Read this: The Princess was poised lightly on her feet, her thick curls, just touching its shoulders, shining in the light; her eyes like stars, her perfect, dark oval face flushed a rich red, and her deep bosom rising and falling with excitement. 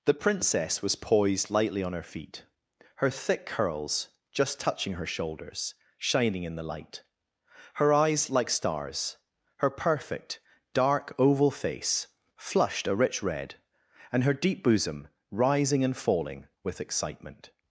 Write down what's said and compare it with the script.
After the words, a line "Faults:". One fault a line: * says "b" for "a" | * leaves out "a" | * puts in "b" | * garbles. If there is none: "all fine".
The Princess was poised lightly on her feet, her thick curls, just touching her shoulders, shining in the light; her eyes like stars, her perfect, dark oval face flushed a rich red, and her deep bosom rising and falling with excitement.
Faults:
* says "her" for "its"